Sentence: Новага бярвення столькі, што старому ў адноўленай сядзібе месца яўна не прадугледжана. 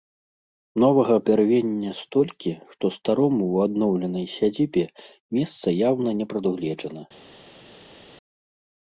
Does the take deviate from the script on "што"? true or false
false